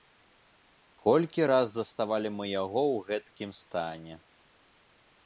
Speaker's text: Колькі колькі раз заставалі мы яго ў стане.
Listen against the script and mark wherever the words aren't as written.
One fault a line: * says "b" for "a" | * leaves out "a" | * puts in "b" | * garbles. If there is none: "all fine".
* leaves out "колькі"
* puts in "гэткім"